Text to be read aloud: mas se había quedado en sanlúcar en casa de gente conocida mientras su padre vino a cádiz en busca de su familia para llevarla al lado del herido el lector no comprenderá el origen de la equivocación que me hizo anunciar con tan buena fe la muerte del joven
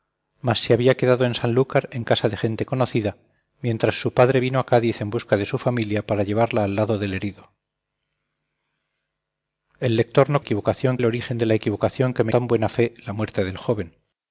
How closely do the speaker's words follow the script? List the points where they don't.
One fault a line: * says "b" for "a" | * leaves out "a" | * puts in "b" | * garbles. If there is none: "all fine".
* says "equivocación" for "comprenderá"
* leaves out "hizo anunciar con"